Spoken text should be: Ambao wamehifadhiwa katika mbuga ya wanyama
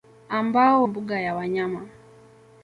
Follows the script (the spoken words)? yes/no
no